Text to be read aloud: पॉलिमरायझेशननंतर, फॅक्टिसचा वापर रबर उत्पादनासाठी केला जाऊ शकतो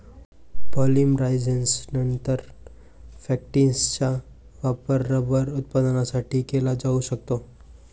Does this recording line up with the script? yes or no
yes